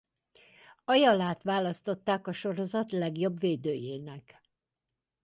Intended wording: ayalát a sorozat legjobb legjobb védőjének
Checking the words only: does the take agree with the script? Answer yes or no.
no